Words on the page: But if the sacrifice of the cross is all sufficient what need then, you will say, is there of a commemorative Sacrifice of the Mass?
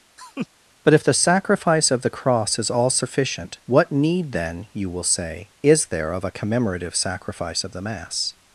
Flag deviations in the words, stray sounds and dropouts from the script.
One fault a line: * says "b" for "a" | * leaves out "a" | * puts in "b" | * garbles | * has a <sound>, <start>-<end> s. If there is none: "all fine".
* has a laugh, 0.2-0.5 s